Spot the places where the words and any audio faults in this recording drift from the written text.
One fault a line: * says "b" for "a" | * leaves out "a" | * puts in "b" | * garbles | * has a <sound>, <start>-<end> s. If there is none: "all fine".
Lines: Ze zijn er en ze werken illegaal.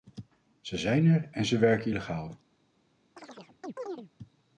* has a chirp, 3.2-4.1 s